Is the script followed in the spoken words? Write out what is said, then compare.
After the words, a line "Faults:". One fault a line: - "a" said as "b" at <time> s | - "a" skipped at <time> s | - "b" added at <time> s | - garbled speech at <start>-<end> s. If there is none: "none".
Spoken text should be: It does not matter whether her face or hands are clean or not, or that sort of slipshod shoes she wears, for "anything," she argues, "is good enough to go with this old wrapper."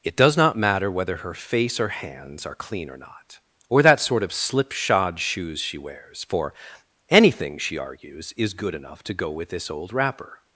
It does not matter whether her face or hands are clean or not, or that sort of slipshod shoes she wears, for "anything," she argues, "is good enough to go with this old wrapper."
Faults:
none